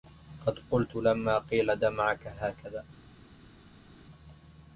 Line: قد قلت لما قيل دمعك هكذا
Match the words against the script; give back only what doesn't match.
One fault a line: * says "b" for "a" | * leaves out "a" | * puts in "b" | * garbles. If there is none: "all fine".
all fine